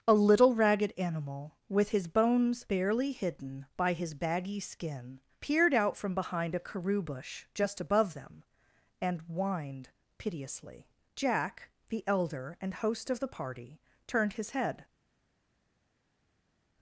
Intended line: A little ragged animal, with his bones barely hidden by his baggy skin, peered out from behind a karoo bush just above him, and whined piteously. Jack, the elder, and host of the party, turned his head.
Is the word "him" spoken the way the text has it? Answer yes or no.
no